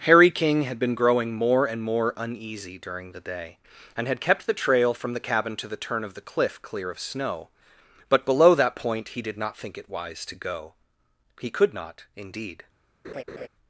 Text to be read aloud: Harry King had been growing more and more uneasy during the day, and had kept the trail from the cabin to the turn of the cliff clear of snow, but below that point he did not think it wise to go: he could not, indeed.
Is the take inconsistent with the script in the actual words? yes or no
no